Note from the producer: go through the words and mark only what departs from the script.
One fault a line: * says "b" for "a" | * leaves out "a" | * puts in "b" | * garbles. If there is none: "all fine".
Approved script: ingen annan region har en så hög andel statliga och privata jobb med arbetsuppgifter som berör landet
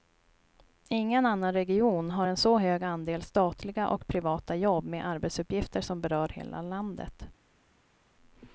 * puts in "hela"